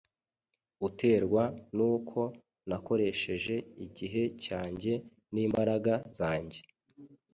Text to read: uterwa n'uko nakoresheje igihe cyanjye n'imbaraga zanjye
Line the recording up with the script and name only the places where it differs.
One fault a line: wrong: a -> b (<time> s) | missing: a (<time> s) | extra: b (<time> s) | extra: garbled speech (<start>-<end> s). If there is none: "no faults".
no faults